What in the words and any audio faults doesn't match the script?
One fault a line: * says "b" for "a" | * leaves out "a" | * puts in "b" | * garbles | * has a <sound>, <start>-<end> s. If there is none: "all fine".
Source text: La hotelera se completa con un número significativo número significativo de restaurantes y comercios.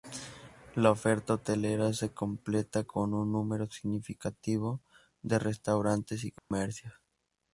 * puts in "oferta"
* leaves out "número significativo"
* has a dropout, 6.4-6.5 s